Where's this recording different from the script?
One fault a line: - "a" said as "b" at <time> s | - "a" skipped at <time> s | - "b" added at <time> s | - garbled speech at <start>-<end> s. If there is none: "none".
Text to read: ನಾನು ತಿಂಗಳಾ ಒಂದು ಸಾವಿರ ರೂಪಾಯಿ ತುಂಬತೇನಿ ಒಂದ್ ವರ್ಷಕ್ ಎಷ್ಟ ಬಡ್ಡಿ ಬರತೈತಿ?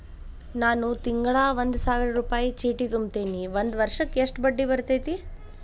- "ಚೇಟಿ" added at 2.5 s